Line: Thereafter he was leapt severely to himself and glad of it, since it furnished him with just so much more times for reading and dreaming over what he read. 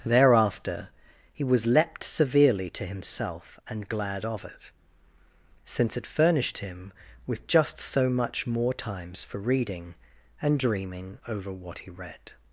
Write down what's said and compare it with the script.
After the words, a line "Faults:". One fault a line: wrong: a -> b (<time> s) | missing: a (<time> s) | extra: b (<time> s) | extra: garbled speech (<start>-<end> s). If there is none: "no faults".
Thereafter he was leapt severely to himself and glad of it, since it furnished him with just so much more times for reading and dreaming over what he read.
Faults:
no faults